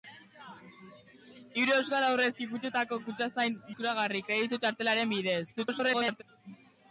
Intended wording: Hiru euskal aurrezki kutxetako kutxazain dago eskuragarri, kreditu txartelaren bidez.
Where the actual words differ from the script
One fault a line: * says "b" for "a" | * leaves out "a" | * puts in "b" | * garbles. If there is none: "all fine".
* leaves out "dago"
* garbles